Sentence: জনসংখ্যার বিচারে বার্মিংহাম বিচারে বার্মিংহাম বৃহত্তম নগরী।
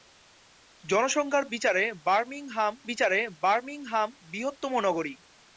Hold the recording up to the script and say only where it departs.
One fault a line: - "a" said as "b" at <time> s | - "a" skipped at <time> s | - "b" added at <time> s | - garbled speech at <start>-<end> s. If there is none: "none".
none